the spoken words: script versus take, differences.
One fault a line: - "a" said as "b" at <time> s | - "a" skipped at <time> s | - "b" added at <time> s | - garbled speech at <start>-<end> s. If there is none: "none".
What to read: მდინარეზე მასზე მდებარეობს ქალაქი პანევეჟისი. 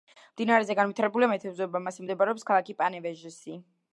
- "განვითარებულია მეთევზეობა" added at 0.8 s